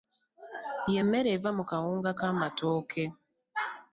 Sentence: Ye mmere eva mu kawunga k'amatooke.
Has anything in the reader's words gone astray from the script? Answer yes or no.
no